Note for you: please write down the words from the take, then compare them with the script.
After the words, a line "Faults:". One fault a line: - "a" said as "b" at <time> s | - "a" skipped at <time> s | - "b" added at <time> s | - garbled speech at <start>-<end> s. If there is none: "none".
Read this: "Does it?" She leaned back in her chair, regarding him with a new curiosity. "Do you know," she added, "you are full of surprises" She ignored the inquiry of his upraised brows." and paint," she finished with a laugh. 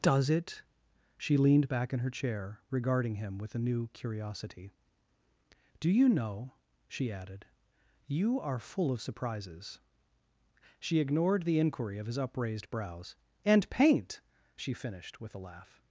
"Does it?" She leaned back in her chair, regarding him with a new curiosity. "Do you know," she added, "you are full of surprises" She ignored the inquiry of his upraised brows." and paint," she finished with a laugh.
Faults:
none